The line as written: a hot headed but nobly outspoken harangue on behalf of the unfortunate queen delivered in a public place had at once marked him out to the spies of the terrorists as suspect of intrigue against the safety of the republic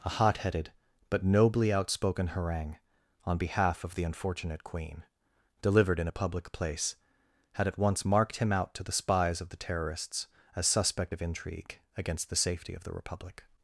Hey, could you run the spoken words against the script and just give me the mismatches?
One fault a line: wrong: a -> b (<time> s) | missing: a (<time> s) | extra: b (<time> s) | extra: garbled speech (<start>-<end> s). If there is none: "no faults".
no faults